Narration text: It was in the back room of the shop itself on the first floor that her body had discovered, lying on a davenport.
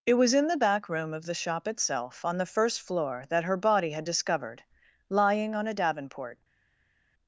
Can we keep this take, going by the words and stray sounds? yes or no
yes